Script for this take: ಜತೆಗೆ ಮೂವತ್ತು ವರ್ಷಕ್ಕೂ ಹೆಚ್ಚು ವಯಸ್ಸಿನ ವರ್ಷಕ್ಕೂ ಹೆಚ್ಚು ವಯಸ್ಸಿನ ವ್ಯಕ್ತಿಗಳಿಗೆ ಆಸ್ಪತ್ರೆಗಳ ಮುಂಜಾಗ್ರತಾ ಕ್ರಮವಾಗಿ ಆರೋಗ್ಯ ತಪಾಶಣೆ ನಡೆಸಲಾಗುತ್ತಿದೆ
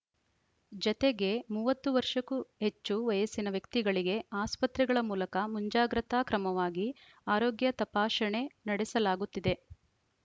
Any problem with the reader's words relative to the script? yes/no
yes